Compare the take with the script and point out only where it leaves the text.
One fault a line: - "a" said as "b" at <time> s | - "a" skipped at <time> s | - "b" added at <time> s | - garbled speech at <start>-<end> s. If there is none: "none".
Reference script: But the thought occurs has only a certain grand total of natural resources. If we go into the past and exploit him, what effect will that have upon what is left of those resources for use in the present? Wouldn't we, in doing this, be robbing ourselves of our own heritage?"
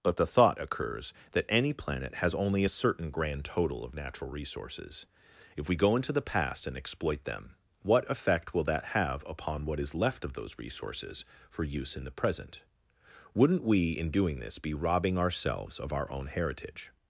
- "that any planet" added at 1.3 s
- "him" said as "them" at 7.2 s